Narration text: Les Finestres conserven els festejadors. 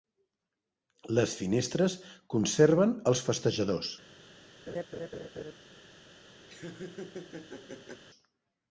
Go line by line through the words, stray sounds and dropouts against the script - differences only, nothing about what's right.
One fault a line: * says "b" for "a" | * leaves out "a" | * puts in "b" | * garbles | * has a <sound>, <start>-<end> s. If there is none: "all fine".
* has a laugh, 4.7-5.5 s
* has a laugh, 6.5-8.0 s